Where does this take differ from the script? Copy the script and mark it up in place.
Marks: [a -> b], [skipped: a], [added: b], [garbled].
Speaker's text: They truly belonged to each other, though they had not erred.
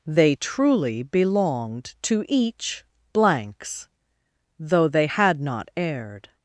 They truly belonged to each [other, -> blanks] though they had not erred.